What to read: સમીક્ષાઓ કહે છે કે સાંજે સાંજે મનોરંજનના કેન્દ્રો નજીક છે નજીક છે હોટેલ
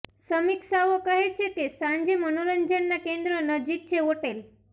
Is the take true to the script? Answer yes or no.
no